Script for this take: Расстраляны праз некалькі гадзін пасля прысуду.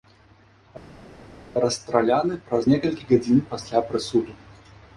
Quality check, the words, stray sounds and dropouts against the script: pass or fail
pass